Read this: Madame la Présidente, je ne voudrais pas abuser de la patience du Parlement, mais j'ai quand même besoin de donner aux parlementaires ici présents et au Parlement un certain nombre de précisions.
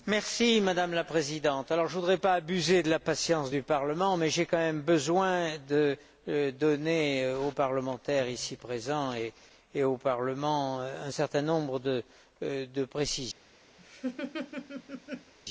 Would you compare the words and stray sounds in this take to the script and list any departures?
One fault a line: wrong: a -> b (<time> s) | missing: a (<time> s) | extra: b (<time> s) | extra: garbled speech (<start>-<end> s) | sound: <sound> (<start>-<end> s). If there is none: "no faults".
sound: laugh (13.8-15.3 s)